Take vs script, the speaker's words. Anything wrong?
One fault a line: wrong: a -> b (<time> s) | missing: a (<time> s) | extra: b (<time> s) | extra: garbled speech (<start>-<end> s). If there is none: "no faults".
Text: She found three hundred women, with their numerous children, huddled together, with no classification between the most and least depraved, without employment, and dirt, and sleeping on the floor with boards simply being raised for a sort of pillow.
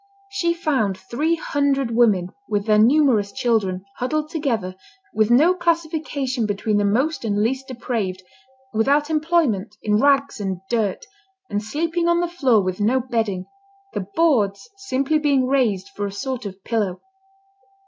extra: in rags (9.8 s)
extra: no bedding the (12.8 s)